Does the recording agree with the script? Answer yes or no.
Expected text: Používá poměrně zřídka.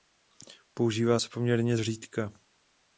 no